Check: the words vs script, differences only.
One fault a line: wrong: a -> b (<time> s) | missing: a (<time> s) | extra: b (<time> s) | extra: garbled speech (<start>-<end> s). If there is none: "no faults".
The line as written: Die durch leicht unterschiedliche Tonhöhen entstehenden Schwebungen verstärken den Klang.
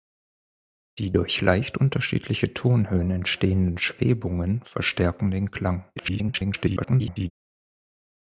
extra: garbled speech (6.0-7.3 s)